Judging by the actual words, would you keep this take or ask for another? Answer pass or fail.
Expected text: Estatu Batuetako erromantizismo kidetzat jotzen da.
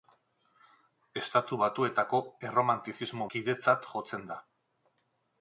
pass